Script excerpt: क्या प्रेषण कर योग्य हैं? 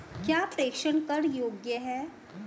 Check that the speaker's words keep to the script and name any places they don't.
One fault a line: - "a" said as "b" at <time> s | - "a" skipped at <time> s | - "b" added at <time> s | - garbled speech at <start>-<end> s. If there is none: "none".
none